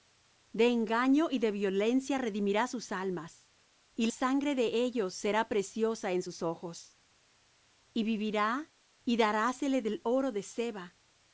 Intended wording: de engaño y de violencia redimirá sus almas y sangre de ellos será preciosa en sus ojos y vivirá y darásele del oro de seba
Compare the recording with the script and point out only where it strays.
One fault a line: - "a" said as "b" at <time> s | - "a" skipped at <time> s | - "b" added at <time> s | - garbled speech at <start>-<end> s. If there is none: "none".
none